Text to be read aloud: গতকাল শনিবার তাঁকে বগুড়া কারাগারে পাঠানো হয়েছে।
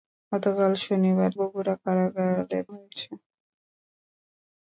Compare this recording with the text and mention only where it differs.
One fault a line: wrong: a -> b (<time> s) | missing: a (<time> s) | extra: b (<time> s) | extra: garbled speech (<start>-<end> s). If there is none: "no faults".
missing: তাঁকে (1.3 s)
missing: পাঠানো (2.6 s)